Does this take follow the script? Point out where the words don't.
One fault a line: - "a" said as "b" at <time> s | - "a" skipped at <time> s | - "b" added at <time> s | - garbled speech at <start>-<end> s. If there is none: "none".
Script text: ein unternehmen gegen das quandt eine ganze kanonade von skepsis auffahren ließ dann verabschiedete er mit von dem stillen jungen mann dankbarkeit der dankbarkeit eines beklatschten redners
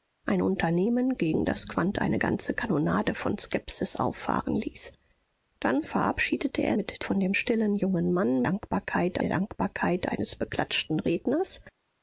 none